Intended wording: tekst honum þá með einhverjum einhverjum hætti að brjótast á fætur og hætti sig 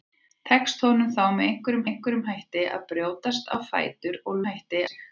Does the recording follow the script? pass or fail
pass